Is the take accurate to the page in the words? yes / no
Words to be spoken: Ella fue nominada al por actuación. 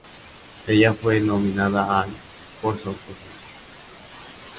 no